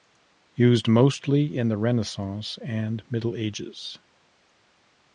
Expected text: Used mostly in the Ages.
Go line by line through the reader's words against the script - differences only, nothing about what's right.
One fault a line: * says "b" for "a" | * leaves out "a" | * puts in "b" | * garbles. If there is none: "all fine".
* puts in "Renaissance and Middle"